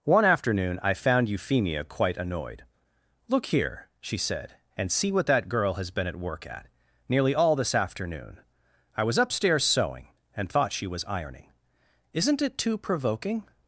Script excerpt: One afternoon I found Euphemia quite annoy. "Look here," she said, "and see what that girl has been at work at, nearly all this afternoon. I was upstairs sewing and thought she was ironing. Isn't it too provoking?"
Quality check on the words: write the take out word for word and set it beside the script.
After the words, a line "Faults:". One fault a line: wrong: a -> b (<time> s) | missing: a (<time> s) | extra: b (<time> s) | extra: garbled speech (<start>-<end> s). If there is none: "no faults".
One afternoon I found Euphemia quite annoyed. "Look here," she said, "and see what that girl has been at work at, nearly all this afternoon. I was upstairs sewing and thought she was ironing. Isn't it too provoking?"
Faults:
wrong: annoy -> annoyed (2.2 s)